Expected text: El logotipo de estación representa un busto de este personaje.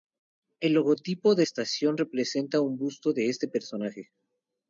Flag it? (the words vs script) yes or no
no